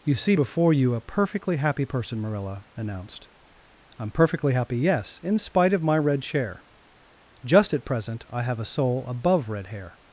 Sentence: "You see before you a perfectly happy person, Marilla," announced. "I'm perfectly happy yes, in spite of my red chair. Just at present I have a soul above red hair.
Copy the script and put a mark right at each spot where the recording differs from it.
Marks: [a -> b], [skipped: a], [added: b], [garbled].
"You see before you a perfectly happy person, Marilla," announced. "I'm perfectly happy yes, in spite of my red chair. Just at present I have a soul above red hair.